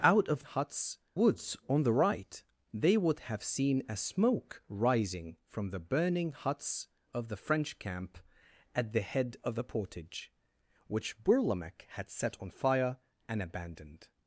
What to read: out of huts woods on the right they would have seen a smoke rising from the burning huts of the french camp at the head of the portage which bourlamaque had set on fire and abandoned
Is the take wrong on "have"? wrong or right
right